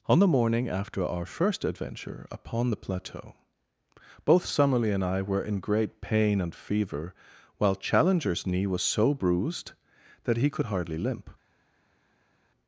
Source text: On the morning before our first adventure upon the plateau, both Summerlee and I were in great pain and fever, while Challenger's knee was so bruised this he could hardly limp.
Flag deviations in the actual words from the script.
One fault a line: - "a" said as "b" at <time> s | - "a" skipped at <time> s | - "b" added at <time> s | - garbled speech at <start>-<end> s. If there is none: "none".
- "before" said as "after" at 0.7 s
- "this" said as "that" at 10.2 s